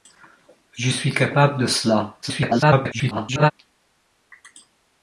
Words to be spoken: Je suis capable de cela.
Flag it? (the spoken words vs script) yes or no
yes